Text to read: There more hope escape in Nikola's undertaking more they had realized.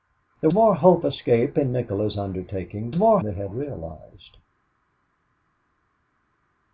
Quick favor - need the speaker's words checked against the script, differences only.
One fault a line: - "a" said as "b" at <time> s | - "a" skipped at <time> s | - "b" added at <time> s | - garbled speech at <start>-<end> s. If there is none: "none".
none